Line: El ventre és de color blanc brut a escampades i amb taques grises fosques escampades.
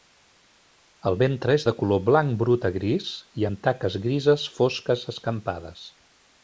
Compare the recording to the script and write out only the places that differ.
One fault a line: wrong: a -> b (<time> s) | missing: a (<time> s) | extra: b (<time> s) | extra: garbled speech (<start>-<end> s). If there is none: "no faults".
wrong: escampades -> gris (2.8 s)